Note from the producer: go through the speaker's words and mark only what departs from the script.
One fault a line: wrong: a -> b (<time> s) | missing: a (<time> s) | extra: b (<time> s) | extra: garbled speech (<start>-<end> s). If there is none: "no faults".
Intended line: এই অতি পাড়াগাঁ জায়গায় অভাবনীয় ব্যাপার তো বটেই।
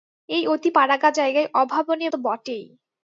missing: ব্যাপার (2.1 s)